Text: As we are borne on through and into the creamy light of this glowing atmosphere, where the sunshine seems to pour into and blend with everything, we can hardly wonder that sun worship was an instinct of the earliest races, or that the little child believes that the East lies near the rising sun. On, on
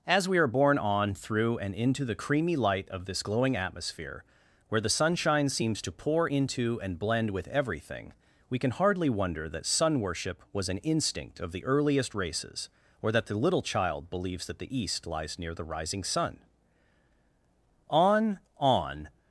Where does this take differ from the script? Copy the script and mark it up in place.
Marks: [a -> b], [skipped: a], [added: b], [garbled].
As we are borne on through and into the creamy light of this glowing atmosphere, where the sunshine seems to pour into and blend with everything, we can hardly wonder that sun worship was an instinct of the earliest races, or that the little child believes that the East lies near the rising sun. On, on